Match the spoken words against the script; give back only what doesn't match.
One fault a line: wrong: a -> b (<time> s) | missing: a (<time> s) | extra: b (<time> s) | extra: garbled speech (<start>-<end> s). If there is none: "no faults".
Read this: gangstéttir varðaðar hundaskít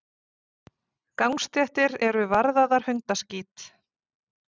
extra: eru (2.1 s)